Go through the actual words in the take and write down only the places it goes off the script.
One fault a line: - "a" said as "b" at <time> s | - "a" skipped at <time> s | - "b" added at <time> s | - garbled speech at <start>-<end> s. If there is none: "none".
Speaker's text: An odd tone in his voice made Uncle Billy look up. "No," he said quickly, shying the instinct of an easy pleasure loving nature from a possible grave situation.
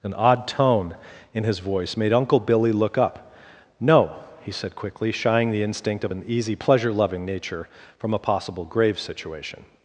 none